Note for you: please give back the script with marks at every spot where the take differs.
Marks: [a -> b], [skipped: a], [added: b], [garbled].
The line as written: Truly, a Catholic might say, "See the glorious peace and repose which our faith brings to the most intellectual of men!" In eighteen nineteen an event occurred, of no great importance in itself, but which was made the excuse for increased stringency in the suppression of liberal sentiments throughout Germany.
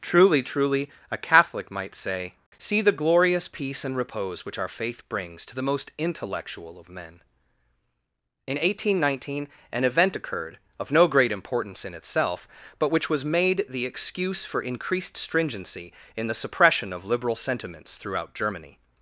Truly, [added: truly] a Catholic might say, "See the glorious peace and repose which our faith brings to the most intellectual of men!" In eighteen nineteen an event occurred, of no great importance in itself, but which was made the excuse for increased stringency in the suppression of liberal sentiments throughout Germany.